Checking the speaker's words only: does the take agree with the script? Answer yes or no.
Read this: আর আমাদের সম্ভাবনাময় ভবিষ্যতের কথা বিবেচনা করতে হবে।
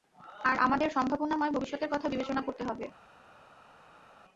yes